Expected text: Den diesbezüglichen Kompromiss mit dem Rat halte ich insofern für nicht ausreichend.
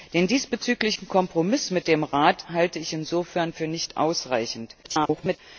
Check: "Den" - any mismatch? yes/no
no